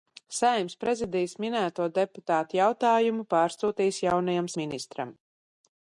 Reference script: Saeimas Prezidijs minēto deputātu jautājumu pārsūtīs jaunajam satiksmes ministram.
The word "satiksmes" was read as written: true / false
false